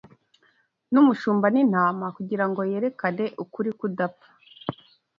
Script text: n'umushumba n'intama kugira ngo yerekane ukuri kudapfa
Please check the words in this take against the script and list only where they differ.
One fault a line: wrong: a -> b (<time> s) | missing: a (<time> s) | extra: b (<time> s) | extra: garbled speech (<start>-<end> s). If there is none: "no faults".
no faults